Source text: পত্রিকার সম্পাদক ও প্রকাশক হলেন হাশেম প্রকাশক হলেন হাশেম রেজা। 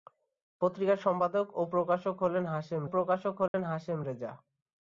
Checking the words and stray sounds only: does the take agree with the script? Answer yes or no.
no